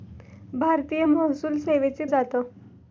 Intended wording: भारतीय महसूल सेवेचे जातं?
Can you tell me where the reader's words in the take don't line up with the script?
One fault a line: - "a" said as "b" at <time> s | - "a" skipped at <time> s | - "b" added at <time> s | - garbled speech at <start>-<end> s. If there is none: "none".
none